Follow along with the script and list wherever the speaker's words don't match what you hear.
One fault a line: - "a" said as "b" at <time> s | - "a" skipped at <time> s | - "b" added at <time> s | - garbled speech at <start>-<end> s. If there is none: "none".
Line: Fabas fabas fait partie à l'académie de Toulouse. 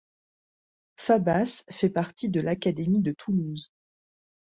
- "fabas" skipped at 1.6 s
- "à" said as "de" at 2.3 s